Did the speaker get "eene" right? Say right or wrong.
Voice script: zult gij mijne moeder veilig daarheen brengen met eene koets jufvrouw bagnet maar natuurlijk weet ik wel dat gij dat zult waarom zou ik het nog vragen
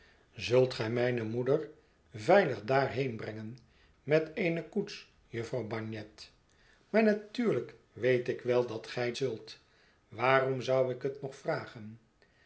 right